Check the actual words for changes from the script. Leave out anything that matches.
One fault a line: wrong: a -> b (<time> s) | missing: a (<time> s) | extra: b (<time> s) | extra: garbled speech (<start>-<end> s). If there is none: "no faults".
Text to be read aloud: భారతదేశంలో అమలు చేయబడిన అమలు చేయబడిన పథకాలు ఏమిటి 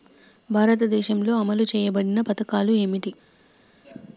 missing: అమలు చేయబడిన (2.2 s)